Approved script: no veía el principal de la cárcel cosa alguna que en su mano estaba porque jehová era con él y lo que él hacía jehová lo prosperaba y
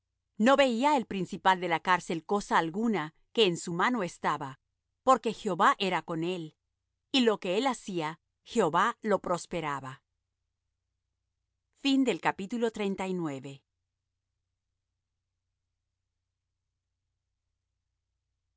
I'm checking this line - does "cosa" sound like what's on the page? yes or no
yes